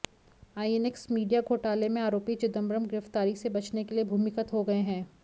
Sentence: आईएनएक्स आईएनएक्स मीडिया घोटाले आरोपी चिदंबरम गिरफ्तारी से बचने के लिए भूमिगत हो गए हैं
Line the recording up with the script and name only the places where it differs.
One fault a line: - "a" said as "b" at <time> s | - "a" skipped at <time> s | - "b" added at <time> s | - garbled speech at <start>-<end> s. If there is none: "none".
- "आईएनएक्स" skipped at 1.1 s
- "में" added at 1.9 s